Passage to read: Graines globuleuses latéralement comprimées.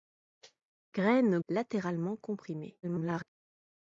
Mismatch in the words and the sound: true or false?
true